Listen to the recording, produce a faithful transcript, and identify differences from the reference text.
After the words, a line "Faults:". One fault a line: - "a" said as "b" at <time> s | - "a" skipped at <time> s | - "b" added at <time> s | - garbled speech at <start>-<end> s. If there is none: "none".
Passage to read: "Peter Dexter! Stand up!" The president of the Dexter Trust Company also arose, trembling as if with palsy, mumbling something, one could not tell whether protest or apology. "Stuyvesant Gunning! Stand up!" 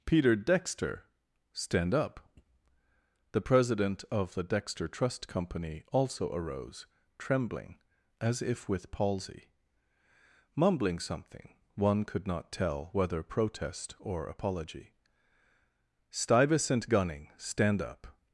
"Peter Dexter! Stand up!" The president of the Dexter Trust Company also arose, trembling as if with palsy, mumbling something, one could not tell whether protest or apology. "Stuyvesant Gunning! Stand up!"
Faults:
none